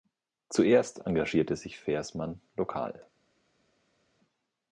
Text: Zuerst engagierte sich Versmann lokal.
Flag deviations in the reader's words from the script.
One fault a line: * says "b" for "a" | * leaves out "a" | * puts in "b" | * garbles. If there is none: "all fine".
all fine